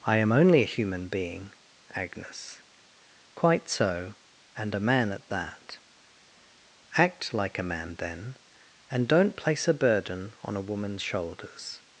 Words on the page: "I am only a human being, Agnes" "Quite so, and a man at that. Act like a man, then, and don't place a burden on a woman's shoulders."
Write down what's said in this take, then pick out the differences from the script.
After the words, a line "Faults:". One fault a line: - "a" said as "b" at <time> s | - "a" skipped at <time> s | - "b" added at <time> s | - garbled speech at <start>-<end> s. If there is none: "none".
"I am only a human being, Agnes" "Quite so, and a man at that. Act like a man, then, and don't place a burden on a woman's shoulders."
Faults:
none